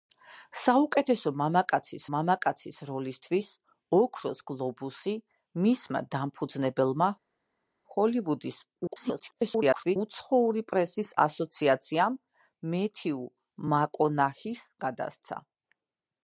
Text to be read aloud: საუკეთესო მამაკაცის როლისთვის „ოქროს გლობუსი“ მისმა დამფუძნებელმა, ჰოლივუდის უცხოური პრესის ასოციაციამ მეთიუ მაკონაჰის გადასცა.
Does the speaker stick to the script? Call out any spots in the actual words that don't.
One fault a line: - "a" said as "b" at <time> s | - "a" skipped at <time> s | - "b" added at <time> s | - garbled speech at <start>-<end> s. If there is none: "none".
- "მამაკაცის" added at 2.1 s
- garbled speech at 8.9-10.0 s